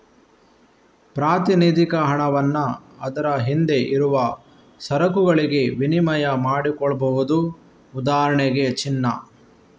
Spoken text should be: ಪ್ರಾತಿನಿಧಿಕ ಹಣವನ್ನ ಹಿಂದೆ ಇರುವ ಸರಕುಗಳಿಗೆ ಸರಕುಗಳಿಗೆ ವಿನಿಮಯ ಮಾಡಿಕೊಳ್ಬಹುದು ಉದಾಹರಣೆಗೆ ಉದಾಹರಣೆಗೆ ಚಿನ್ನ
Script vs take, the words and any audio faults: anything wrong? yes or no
yes